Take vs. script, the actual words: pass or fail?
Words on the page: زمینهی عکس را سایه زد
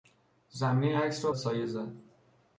pass